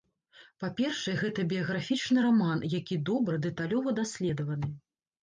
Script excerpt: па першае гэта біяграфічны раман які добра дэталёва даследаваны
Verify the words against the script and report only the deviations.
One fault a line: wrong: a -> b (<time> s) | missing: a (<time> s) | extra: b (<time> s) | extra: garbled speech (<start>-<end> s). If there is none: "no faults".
no faults